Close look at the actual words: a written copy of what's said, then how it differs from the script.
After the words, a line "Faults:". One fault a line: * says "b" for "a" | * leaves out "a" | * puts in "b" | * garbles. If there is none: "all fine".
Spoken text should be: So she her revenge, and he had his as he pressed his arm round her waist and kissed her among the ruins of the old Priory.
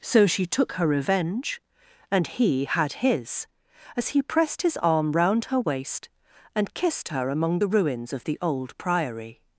So she took her revenge, and he had his as he pressed his arm round her waist and kissed her among the ruins of the old Priory.
Faults:
* puts in "took"